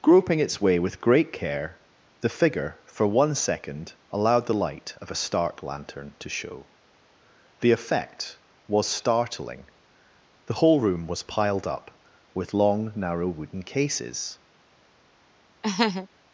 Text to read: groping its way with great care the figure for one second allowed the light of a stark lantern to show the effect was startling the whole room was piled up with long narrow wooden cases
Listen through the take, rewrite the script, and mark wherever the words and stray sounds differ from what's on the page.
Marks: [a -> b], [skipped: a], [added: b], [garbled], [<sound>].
groping its way with great care the figure for one second allowed the light of a stark lantern to show the effect was startling the whole room was piled up with long narrow wooden cases [laugh]